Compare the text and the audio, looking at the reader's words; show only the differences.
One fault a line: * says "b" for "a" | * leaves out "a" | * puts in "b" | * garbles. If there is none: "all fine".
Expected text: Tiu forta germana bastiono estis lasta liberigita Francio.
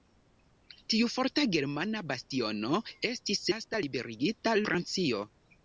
all fine